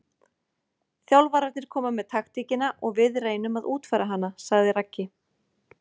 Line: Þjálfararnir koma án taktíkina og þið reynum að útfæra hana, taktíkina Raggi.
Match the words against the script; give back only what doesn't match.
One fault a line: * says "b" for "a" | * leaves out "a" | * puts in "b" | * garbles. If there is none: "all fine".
* says "með" for "án"
* says "við" for "þið"
* says "sagði" for "taktíkina"